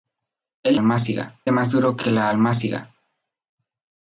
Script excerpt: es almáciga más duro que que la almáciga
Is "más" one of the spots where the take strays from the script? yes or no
no